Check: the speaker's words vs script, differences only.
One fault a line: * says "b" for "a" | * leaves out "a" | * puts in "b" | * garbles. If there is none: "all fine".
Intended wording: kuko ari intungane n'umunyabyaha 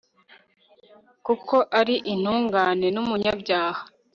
all fine